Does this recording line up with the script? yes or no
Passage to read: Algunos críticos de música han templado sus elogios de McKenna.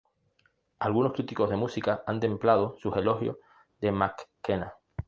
yes